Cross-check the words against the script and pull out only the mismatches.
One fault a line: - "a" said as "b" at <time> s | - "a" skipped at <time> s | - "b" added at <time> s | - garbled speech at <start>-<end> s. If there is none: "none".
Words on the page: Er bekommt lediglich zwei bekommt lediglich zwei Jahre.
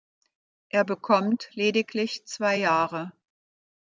- "bekommt lediglich zwei" skipped at 2.6 s